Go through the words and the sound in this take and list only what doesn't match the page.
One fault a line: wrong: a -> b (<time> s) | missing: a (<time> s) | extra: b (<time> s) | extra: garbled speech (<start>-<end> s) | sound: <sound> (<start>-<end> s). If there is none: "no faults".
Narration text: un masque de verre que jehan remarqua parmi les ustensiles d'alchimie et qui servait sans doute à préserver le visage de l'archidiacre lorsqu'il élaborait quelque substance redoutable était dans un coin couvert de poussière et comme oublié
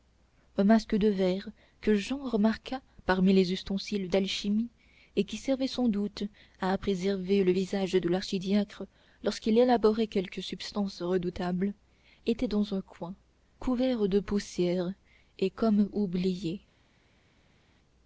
no faults